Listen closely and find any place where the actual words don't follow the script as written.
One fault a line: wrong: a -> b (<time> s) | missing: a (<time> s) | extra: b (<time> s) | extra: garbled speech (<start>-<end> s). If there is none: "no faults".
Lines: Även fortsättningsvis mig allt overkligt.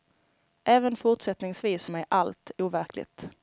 no faults